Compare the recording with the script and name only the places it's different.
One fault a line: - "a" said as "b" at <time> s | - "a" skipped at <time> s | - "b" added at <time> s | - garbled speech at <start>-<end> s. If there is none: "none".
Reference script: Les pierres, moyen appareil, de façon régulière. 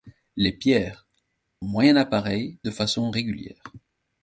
none